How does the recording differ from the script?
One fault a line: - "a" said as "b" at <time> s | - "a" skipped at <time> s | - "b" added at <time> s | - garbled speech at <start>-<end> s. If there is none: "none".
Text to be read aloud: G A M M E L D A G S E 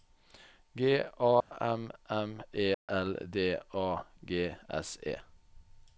none